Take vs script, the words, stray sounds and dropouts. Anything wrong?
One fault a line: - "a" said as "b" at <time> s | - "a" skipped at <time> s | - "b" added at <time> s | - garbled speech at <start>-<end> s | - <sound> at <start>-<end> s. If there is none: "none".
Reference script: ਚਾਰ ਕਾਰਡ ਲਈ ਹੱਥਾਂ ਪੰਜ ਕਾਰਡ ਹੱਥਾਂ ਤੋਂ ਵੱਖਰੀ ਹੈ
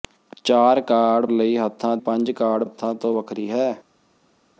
none